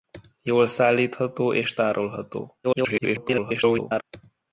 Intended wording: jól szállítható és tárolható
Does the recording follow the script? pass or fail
fail